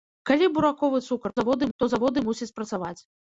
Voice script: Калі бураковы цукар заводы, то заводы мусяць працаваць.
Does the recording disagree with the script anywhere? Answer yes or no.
no